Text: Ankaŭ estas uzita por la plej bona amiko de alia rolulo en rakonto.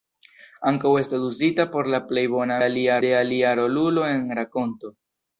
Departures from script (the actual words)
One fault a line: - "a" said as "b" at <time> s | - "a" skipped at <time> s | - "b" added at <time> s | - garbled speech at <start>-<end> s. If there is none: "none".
- "amiko" said as "alia" at 2.7 s